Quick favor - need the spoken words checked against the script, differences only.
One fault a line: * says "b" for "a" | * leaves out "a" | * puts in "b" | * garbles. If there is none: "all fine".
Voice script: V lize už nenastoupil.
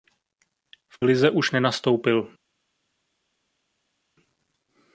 all fine